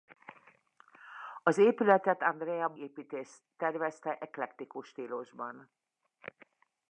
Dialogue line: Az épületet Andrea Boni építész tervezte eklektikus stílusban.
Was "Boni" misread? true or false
true